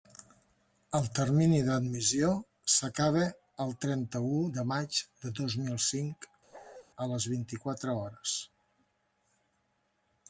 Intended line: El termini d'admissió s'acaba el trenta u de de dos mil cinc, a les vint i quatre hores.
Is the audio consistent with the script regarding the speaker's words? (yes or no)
no